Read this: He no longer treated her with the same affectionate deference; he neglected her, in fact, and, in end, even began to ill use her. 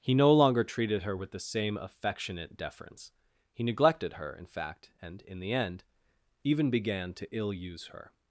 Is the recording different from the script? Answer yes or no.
yes